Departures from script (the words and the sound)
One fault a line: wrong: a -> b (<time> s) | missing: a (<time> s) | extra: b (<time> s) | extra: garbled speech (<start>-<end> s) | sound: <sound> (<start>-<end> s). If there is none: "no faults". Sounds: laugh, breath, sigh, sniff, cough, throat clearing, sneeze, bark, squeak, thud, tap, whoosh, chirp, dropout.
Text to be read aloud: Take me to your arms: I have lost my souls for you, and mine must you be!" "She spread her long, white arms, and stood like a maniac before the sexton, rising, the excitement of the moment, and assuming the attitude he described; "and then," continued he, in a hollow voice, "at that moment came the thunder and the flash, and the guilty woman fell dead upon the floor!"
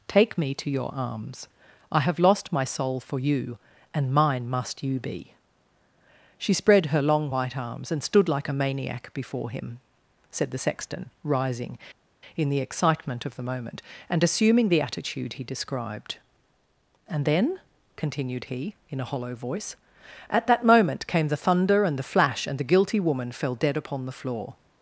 wrong: souls -> soul (2.6 s)
extra: him said (9.5 s)
extra: in (12.4 s)